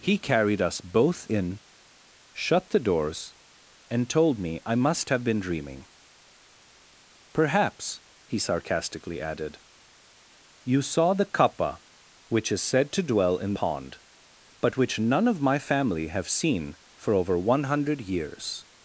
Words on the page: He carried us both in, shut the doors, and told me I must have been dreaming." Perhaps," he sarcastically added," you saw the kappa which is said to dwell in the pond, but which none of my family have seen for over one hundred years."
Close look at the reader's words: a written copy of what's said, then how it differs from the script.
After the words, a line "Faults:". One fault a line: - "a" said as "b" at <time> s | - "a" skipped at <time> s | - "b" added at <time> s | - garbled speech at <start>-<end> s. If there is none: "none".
He carried us both in, shut the doors, and told me I must have been dreaming." Perhaps," he sarcastically added," you saw the kappa which is said to dwell in pond, but which none of my family have seen for over one hundred years."
Faults:
- "the" skipped at 13.6 s